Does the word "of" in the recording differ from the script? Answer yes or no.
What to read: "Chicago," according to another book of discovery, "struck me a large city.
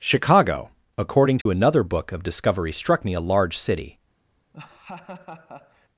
no